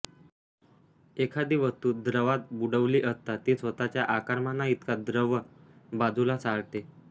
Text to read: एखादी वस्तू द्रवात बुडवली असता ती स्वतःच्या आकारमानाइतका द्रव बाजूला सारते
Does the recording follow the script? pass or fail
pass